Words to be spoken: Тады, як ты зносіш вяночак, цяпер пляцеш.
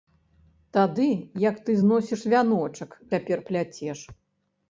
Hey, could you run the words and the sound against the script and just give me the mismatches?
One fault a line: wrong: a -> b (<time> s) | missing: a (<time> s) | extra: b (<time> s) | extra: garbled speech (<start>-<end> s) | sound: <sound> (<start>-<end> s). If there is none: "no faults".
no faults